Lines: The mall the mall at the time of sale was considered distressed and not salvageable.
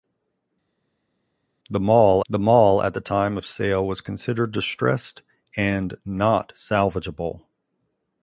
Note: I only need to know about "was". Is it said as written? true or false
true